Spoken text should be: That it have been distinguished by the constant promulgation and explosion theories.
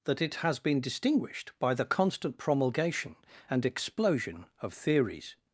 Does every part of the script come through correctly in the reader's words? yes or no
no